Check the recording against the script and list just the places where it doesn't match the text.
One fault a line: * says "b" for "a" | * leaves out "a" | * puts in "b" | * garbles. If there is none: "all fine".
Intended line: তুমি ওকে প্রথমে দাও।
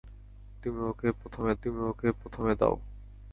* puts in "তুমি ওকে প্রথমে"